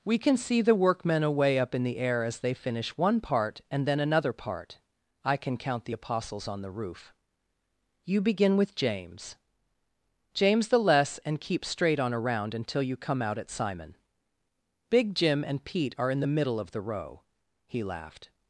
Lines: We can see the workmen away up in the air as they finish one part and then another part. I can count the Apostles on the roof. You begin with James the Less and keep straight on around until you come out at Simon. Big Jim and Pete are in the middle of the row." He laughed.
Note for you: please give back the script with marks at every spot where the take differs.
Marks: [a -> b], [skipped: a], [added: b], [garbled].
We can see the workmen away up in the air as they finish one part and then another part. I can count the Apostles on the roof. You begin with James [added: James] the Less and keep straight on around until you come out at Simon. Big Jim and Pete are in the middle of the row." He laughed.